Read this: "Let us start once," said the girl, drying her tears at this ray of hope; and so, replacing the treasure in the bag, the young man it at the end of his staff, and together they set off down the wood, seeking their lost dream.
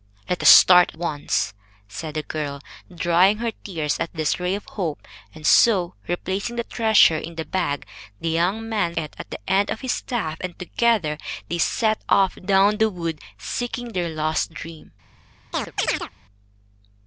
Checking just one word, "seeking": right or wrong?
right